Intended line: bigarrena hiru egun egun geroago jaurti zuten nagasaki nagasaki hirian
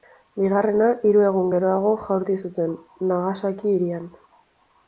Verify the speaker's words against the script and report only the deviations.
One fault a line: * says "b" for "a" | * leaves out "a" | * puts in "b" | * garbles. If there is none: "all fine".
* leaves out "egun"
* leaves out "nagasaki"